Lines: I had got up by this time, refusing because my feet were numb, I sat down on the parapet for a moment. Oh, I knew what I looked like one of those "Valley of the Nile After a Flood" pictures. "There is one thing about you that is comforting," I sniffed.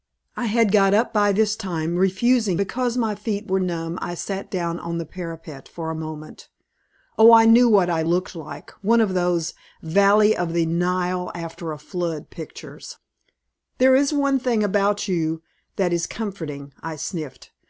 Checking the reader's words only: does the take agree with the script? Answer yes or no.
yes